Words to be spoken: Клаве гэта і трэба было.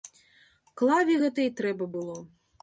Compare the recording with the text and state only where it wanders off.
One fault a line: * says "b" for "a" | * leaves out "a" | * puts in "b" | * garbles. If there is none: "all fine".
all fine